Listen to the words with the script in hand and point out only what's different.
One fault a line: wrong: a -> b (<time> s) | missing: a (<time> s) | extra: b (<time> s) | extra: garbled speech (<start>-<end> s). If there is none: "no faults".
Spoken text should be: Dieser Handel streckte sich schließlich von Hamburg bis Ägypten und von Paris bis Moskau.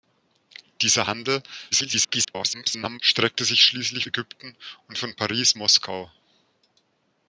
extra: garbled speech (1.7-3.0 s)
missing: von Hamburg bis (4.1 s)
missing: bis (5.5 s)